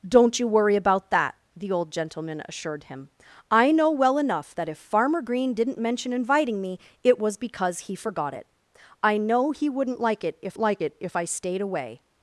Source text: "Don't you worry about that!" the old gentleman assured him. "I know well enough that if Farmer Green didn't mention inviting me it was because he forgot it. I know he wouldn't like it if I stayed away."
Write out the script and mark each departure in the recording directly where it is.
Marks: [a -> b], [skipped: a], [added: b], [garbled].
"Don't you worry about that!" the old gentleman assured him. "I know well enough that if Farmer Green didn't mention inviting me it was because he forgot it. I know he wouldn't like it if [added: like it if] I stayed away."